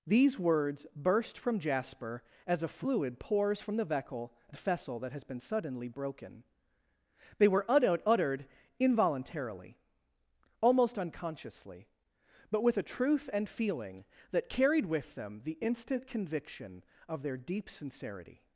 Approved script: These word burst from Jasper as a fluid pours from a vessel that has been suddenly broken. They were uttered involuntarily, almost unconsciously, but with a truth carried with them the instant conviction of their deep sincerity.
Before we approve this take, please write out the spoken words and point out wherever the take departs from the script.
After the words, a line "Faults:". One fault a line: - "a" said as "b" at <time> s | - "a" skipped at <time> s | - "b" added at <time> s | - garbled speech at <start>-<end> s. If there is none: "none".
These words burst from Jasper as a fluid pours from the vessel that has been suddenly broken. They were uttered involuntarily, almost unconsciously, but with a truth and feeling that carried with them the instant conviction of their deep sincerity.
Faults:
- "word" said as "words" at 0.4 s
- "a" said as "the" at 3.8 s
- "and feeling that" added at 13.3 s